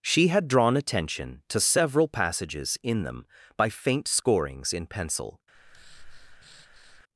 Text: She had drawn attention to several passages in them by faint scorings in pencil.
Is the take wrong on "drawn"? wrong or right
right